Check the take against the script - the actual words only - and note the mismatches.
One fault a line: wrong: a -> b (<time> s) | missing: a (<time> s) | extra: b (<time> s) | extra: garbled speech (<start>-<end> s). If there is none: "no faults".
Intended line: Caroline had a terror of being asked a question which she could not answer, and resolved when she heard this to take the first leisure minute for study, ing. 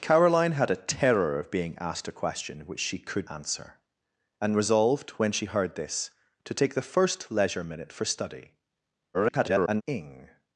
missing: not (3.3 s)
extra: garbled speech (9.1-9.8 s)